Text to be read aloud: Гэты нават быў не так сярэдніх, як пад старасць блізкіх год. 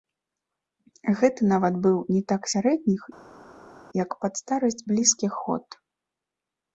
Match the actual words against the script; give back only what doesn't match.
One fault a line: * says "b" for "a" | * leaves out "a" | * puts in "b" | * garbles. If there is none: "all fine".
all fine